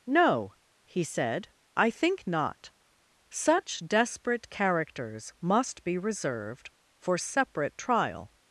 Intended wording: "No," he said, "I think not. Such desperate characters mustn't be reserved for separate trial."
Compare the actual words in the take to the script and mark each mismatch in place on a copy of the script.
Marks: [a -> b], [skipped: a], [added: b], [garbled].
"No," he said, "I think not. Such desperate characters [mustn't -> must] be reserved for separate trial."